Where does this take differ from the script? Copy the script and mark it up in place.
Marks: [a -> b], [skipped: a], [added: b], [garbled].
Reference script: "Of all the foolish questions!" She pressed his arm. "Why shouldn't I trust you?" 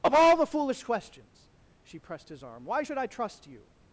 "Of all the foolish questions!" She pressed his arm. "Why [shouldn't -> should] I trust you?"